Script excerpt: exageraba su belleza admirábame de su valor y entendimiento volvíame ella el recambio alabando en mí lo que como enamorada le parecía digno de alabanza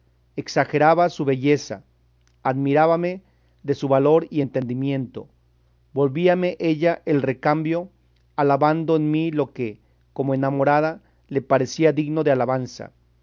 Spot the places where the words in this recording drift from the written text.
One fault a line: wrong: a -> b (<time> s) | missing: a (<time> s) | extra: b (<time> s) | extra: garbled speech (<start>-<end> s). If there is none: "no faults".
no faults